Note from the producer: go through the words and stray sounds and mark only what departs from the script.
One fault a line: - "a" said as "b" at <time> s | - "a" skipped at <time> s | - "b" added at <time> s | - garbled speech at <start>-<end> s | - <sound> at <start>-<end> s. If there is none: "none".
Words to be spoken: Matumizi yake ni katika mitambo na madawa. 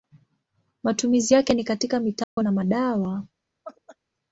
- dropout at 2.2-2.4 s
- laugh at 3.6-4.0 s